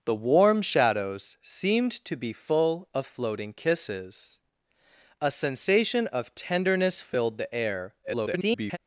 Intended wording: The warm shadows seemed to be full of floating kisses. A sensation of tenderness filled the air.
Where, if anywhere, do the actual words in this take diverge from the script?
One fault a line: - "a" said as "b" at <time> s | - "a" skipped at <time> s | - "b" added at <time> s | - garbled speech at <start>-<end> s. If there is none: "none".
- garbled speech at 8.0-8.8 s